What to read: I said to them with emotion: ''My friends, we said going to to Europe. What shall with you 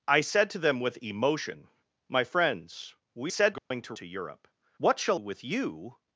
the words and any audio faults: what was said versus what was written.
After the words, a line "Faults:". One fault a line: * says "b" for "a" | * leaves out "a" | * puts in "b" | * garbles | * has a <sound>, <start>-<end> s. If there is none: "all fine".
I said to them with emotion: ''My friends, we said going to to Europe. What shall with you
Faults:
* has a dropout, 3.6-3.7 s